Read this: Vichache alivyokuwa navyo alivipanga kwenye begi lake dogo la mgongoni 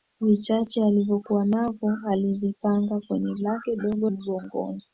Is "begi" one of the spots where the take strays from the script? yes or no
yes